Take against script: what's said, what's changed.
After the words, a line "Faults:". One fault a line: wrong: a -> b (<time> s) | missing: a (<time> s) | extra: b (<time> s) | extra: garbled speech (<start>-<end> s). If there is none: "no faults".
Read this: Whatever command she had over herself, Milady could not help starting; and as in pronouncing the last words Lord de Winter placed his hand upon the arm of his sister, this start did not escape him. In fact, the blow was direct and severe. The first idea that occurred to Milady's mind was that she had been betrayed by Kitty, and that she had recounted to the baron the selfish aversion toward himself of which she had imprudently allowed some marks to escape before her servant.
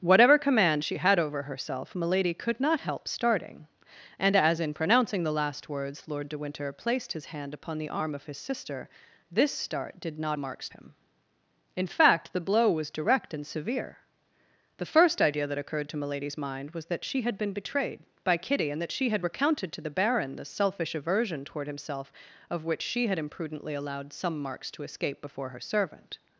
Whatever command she had over herself, Milady could not help starting; and as in pronouncing the last words Lord de Winter placed his hand upon the arm of his sister, this start did not marks him. In fact, the blow was direct and severe. The first idea that occurred to Milady's mind was that she had been betrayed by Kitty, and that she had recounted to the baron the selfish aversion toward himself of which she had imprudently allowed some marks to escape before her servant.
Faults:
wrong: escape -> marks (10.4 s)